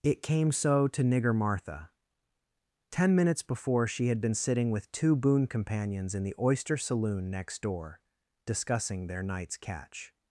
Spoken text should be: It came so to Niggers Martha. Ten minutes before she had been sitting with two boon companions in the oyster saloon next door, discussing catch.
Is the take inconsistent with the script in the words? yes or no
yes